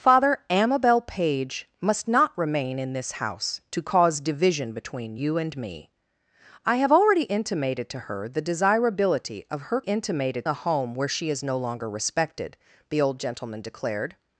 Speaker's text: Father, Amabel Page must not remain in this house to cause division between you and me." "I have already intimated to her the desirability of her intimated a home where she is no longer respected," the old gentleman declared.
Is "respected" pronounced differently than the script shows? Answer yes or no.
no